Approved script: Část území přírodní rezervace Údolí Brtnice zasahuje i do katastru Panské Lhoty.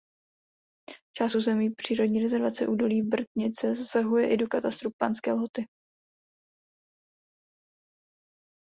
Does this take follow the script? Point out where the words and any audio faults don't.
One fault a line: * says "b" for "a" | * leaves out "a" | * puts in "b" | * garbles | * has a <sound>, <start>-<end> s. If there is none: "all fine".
all fine